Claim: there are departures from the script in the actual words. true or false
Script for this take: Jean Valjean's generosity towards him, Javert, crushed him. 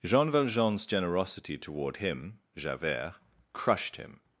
true